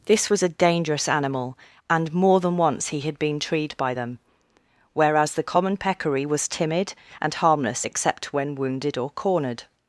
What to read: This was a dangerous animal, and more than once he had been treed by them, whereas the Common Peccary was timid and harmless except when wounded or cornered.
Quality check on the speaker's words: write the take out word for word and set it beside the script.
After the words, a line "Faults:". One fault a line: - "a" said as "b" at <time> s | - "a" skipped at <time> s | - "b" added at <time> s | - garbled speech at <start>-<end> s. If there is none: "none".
This was a dangerous animal, and more than once he had been treed by them, whereas the Common Peccary was timid and harmless except when wounded or cornered.
Faults:
none